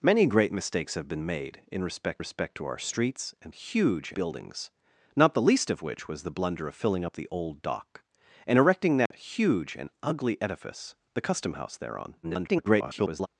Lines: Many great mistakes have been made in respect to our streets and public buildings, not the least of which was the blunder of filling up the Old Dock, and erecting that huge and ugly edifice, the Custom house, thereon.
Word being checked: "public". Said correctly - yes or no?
no